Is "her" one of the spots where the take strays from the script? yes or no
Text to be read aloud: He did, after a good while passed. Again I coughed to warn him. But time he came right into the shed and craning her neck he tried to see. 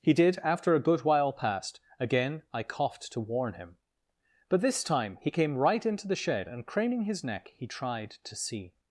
yes